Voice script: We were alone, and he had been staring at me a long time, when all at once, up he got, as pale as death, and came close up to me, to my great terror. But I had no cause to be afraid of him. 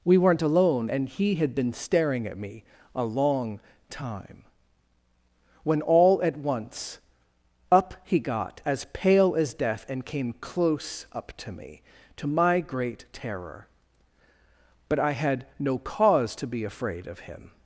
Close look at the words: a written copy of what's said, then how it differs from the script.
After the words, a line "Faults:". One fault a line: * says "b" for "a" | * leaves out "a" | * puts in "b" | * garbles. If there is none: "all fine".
We weren't alone, and he had been staring at me a long time, when all at once, up he got, as pale as death, and came close up to me, to my great terror. But I had no cause to be afraid of him.
Faults:
* says "weren't" for "were"